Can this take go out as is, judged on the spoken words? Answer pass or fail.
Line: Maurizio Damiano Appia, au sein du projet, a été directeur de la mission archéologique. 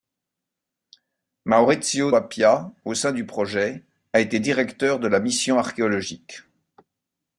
fail